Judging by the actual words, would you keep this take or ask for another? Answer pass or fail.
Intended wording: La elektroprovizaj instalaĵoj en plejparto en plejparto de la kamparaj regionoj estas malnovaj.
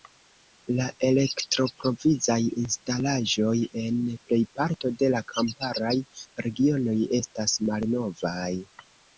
fail